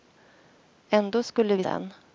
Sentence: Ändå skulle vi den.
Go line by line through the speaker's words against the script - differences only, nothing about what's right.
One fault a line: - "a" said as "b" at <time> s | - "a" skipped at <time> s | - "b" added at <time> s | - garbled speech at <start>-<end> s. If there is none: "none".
none